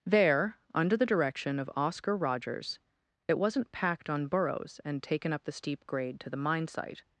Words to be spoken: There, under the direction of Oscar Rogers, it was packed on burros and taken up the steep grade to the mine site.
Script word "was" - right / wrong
wrong